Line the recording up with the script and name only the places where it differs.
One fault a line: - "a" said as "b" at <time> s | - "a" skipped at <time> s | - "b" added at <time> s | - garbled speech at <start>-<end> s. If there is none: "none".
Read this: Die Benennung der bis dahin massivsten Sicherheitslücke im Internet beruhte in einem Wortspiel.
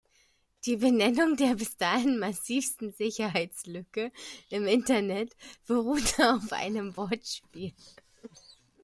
- "in" said as "auf" at 6.3 s